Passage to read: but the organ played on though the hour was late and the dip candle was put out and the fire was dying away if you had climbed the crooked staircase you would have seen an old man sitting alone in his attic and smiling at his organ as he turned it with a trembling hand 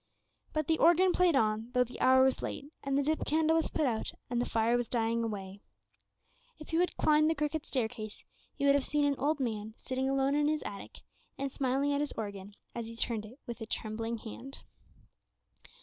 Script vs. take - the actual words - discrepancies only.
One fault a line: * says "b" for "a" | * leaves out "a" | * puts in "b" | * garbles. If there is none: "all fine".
all fine